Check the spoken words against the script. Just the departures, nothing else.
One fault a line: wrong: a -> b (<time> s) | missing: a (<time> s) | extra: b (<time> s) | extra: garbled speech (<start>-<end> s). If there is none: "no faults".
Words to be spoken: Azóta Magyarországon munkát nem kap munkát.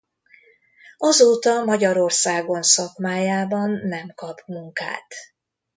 wrong: munkát -> szakmájában (2.6 s)